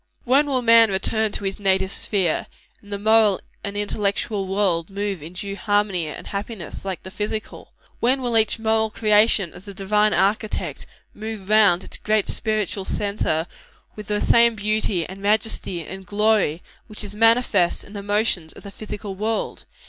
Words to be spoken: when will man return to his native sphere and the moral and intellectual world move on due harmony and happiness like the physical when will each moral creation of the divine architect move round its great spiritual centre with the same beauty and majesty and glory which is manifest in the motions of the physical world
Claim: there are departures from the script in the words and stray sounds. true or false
true